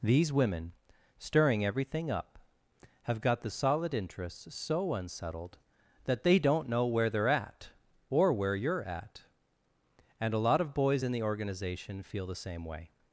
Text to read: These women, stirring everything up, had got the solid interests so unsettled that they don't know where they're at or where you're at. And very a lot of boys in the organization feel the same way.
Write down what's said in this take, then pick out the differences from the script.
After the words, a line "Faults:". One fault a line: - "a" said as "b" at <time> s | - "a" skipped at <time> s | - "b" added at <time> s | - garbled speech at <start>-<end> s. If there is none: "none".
These women, stirring everything up, have got the solid interests so unsettled that they don't know where they're at or where you're at. And a lot of boys in the organization feel the same way.
Faults:
- "had" said as "have" at 3.0 s
- "very" skipped at 10.3 s